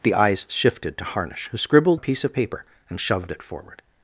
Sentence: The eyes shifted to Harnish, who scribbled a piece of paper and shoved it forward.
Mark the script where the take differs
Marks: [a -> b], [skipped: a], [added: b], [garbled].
The eyes shifted to Harnish, who scribbled a piece of paper and shoved it forward.